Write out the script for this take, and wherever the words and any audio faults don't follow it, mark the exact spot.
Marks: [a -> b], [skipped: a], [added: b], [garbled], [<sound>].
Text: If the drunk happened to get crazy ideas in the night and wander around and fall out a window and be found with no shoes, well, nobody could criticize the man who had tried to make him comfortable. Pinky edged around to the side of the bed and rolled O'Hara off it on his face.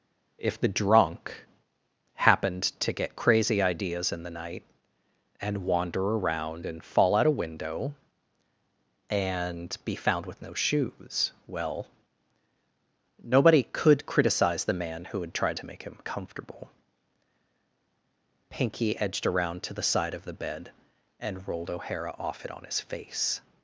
If the drunk happened to get crazy ideas in the night and wander around and fall out a window and be found with no shoes, well, nobody could criticize the man who had tried to make him comfortable. Pinky edged around to the side of the bed and rolled O'Hara off it on his face.